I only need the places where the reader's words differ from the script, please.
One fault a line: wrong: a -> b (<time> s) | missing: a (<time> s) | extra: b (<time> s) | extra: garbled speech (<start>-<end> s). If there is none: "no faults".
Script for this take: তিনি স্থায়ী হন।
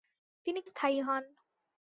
no faults